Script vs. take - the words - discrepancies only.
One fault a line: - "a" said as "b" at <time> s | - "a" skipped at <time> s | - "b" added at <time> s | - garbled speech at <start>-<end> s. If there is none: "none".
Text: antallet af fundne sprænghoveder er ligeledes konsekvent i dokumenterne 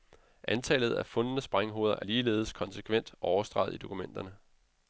- "overstreget" added at 3.2 s